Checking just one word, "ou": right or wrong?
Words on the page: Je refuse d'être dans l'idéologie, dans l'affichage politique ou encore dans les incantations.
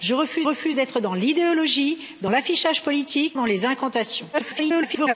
wrong